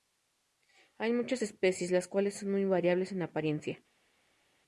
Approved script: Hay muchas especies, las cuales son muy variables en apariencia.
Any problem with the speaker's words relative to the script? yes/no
no